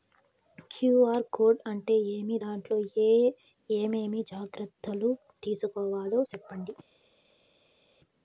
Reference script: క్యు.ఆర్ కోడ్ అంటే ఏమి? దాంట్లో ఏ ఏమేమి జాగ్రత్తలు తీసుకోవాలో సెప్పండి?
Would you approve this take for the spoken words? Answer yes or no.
yes